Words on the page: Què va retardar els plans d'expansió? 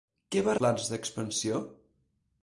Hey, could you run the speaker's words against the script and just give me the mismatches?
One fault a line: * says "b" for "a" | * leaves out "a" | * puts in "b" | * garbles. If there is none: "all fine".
* leaves out "retardar els"